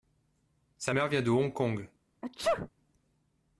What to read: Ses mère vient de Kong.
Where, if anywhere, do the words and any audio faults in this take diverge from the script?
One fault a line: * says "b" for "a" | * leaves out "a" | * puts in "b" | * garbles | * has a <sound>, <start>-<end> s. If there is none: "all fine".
* says "Sa" for "Ses"
* puts in "Hong"
* has a sneeze, 2.2-2.7 s